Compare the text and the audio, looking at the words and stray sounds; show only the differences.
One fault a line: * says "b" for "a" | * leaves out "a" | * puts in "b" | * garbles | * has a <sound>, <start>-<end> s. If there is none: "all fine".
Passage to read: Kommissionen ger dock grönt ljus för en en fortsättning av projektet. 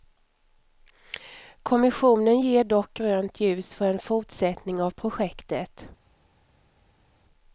* leaves out "en"